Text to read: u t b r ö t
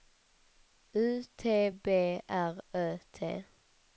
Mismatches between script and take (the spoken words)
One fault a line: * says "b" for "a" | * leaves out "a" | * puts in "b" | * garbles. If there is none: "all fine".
all fine